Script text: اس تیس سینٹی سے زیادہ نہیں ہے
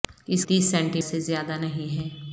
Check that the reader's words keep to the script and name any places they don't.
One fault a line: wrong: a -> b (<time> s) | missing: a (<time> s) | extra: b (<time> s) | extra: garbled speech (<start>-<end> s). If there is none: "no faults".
no faults